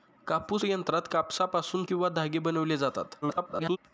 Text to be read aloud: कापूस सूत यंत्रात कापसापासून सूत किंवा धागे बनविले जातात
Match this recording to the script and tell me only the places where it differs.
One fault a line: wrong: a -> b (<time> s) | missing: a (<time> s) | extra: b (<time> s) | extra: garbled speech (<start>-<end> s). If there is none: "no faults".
missing: सूत (0.6 s)
missing: सूत (1.8 s)
extra: garbled speech (3.2-3.8 s)